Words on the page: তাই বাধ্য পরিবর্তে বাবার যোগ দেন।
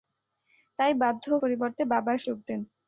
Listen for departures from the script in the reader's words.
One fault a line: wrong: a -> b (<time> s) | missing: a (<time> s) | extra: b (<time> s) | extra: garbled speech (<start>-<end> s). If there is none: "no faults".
no faults